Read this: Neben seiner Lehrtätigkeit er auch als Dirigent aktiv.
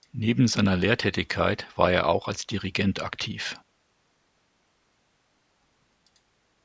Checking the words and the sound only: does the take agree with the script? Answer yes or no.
no